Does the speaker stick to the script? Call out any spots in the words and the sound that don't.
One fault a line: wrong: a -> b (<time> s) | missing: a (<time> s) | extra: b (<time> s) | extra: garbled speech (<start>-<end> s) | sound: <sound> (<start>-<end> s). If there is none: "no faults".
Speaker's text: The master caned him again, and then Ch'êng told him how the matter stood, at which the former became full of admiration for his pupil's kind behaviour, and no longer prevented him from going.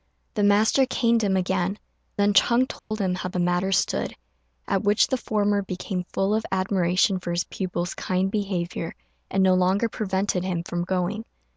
missing: and (1.8 s)
sound: dropout (2.8-2.9 s)